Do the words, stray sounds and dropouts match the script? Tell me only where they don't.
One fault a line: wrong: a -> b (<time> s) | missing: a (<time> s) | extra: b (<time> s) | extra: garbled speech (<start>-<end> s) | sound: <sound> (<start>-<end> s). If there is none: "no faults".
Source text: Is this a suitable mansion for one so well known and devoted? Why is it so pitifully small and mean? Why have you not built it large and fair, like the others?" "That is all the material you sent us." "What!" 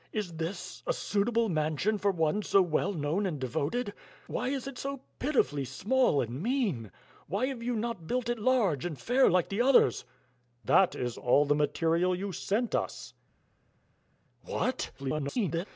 extra: garbled speech (15.0-15.7 s)